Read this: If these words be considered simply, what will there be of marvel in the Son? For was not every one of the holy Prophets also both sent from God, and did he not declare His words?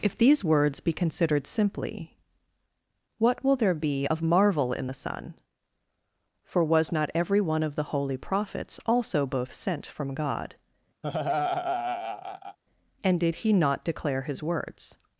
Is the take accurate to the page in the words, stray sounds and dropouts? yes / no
no